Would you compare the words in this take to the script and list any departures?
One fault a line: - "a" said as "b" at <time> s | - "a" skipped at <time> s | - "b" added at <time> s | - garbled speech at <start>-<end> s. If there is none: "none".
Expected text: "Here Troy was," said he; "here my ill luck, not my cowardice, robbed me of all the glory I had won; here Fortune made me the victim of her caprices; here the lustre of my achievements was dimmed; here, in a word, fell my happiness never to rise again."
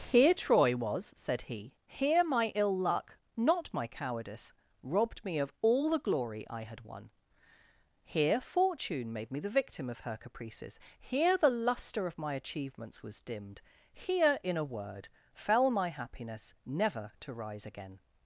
none